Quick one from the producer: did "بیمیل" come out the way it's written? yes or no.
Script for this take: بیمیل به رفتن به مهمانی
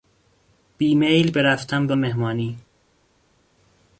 yes